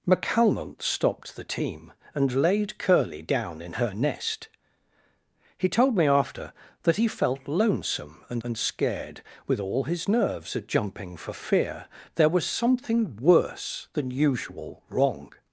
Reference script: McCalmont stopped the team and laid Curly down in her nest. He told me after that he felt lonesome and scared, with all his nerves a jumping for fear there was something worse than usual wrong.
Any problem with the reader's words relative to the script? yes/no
yes